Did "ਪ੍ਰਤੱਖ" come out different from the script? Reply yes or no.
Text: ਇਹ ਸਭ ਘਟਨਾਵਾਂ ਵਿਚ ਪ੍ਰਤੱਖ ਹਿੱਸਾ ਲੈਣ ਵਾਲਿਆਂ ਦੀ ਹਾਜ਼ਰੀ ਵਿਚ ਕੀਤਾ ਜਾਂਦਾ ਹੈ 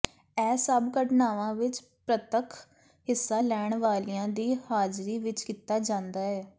no